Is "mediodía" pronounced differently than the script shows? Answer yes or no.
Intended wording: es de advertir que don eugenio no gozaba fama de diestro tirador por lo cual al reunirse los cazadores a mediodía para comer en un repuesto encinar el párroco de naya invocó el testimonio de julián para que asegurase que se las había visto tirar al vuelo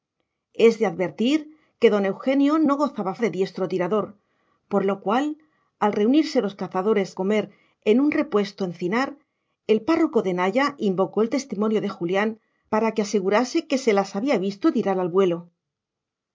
yes